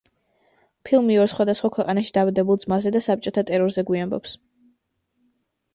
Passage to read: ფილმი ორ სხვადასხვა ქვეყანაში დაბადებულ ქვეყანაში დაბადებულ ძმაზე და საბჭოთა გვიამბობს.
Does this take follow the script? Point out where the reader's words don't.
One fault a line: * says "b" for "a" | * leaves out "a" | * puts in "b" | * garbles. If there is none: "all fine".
* leaves out "ქვეყანაში დაბადებულ"
* puts in "ტერორზე"